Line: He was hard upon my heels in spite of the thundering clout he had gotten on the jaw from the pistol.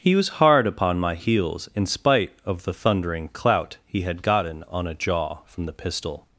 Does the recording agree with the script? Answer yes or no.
no